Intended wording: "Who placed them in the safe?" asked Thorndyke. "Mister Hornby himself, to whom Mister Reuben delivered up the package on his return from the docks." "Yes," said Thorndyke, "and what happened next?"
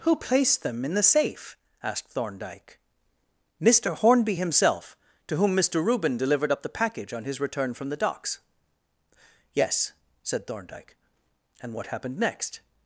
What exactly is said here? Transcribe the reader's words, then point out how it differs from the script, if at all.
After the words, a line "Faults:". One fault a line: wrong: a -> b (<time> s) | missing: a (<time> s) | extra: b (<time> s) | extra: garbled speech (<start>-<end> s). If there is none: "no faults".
"Who placed them in the safe?" asked Thorndyke. "Mister Hornby himself, to whom Mister Reuben delivered up the package on his return from the docks." "Yes," said Thorndyke, "and what happened next?"
Faults:
no faults